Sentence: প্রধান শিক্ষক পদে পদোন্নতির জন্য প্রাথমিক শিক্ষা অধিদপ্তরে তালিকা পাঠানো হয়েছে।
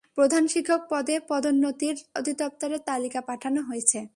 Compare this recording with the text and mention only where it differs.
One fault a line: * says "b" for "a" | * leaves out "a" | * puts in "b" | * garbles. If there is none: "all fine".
* leaves out "জন্য প্রাথমিক শিক্ষা"